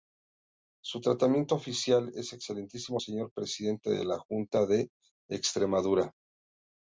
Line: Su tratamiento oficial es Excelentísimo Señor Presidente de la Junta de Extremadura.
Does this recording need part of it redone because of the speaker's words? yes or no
no